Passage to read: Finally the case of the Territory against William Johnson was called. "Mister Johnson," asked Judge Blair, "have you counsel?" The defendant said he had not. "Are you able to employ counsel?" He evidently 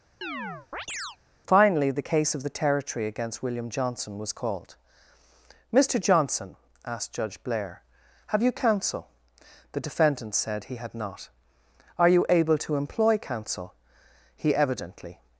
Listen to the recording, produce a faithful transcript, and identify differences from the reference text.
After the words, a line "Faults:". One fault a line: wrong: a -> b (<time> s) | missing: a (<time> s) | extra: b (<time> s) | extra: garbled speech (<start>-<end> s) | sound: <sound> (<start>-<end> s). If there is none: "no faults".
Finally the case of the Territory against William Johnson was called. "Mister Johnson," asked Judge Blair, "have you counsel?" The defendant said he had not. "Are you able to employ counsel?" He evidently
Faults:
sound: chirp (0.2-1.2 s)